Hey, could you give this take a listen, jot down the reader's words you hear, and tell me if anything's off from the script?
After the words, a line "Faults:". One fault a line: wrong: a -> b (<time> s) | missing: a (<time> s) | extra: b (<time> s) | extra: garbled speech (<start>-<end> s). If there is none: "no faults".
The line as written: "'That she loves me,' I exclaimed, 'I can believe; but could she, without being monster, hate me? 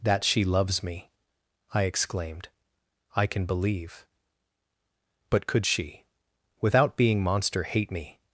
"'That she loves me,' I exclaimed, 'I can believe; but could she, without being monster, hate me?
Faults:
no faults